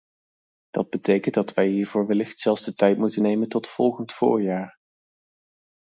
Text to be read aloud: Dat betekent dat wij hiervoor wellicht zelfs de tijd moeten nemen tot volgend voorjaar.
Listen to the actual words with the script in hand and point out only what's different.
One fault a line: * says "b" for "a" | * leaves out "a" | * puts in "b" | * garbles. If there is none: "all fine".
all fine